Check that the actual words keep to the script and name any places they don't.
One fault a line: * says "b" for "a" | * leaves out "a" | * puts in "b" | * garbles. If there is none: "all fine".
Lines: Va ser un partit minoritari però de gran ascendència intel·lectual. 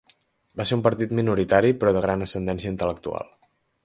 all fine